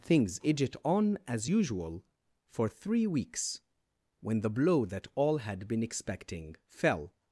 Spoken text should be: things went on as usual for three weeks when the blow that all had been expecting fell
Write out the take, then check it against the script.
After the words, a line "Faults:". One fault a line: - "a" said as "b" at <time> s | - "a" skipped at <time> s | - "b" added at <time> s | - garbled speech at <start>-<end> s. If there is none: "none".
things idget on as usual for three weeks when the blow that all had been expecting fell
Faults:
- "went" said as "idget" at 0.4 s